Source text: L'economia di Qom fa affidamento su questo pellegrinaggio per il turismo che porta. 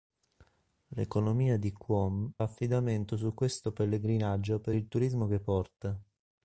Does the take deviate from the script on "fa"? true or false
true